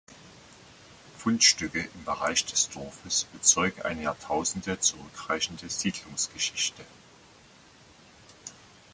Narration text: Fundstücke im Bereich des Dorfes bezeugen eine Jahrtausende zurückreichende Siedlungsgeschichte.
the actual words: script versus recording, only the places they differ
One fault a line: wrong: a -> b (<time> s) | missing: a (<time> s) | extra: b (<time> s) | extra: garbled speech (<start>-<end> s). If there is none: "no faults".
no faults